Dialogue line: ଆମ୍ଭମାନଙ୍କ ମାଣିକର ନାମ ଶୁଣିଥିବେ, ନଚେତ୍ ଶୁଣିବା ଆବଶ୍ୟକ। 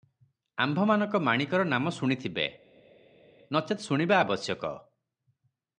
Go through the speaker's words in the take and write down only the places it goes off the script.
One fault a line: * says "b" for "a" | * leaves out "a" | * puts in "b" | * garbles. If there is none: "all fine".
all fine